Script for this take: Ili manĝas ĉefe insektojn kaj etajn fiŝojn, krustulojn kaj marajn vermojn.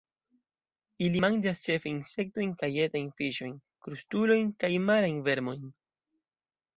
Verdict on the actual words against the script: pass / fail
pass